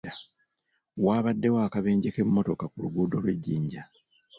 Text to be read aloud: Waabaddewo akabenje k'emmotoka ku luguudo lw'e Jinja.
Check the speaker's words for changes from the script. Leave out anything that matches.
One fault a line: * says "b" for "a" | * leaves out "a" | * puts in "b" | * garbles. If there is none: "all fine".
all fine